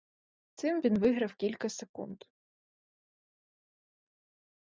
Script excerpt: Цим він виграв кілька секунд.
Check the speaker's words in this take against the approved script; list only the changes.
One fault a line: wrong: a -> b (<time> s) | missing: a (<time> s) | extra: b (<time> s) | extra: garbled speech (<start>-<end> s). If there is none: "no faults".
no faults